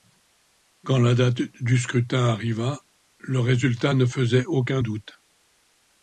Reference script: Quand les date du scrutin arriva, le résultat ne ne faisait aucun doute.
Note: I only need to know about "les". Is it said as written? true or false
false